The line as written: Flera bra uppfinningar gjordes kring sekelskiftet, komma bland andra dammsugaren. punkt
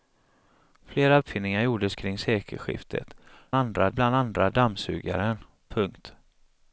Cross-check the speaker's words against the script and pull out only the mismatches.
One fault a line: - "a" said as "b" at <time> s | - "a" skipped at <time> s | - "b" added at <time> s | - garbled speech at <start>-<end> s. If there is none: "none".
- "bra" skipped at 1.2 s
- "komma" said as "andra" at 3.5 s